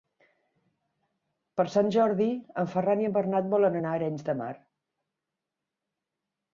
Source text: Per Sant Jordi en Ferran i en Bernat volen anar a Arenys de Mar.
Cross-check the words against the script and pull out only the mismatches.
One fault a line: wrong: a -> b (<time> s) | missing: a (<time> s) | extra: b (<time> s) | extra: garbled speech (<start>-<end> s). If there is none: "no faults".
no faults